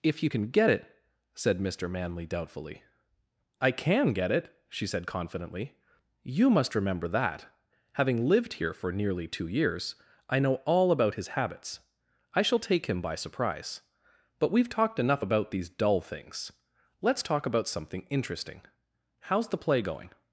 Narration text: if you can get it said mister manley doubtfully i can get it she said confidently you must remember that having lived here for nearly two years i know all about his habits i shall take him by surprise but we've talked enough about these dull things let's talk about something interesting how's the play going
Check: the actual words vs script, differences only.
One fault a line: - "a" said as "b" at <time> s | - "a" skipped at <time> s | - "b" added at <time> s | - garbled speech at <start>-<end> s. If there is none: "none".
none